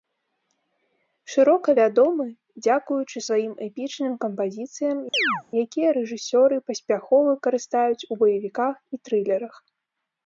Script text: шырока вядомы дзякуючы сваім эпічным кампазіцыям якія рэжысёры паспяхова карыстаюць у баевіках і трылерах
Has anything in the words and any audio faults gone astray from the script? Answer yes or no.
yes